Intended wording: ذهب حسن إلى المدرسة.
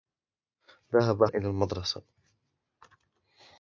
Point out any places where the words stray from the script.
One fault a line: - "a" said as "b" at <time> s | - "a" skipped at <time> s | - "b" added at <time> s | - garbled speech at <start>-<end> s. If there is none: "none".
- "حسن" skipped at 1.2 s